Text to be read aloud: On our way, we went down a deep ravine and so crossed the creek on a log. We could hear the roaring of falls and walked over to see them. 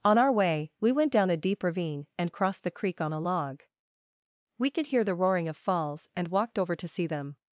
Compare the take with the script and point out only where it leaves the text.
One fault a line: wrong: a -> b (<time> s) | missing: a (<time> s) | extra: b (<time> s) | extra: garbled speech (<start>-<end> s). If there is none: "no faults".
missing: so (2.3 s)